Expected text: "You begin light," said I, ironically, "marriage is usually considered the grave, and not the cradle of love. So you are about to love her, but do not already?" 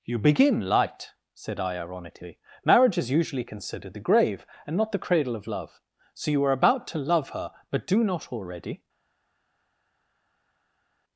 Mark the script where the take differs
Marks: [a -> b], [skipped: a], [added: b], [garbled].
"You begin light," said I, ironically, "marriage is usually considered the grave, and not the cradle of love. So you are about to love her, but do not already?"